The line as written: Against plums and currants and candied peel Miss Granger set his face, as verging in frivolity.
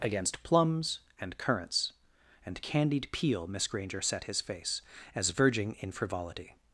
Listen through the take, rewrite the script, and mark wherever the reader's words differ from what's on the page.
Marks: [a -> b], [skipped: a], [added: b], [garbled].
Against plums and currants and candied peel Miss Granger set his face, as verging in frivolity.